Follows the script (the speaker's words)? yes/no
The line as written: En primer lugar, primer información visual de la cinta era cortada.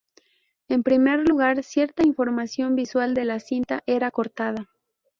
no